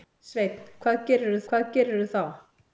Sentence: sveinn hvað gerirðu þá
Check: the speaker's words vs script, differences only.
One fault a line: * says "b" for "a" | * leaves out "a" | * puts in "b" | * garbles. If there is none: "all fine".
* puts in "hvað gerirðu"